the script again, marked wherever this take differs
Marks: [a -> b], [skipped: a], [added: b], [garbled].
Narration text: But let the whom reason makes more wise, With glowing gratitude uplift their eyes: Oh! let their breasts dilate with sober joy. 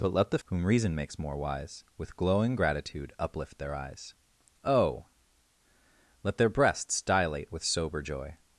But let the whom reason makes more wise, With glowing gratitude uplift their eyes: Oh! let their breasts dilate with sober joy.